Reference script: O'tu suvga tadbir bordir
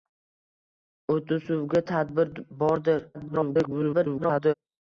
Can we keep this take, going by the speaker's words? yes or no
no